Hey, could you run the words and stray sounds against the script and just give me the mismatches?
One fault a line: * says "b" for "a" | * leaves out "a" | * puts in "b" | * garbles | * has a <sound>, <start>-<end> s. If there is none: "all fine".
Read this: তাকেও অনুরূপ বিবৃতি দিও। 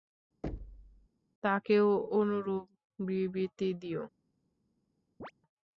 * has a thud, 0.4-1.1 s
* has a chirp, 5.2-5.3 s